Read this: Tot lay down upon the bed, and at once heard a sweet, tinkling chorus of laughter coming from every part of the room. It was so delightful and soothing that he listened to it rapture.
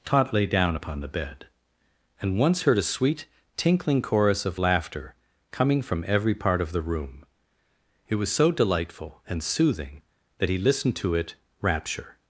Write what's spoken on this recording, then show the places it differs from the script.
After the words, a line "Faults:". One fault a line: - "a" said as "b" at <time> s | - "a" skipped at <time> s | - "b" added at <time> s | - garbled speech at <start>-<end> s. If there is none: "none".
Tot lay down upon the bed, and once heard a sweet, tinkling chorus of laughter coming from every part of the room. It was so delightful and soothing that he listened to it rapture.
Faults:
- "at" skipped at 2.4 s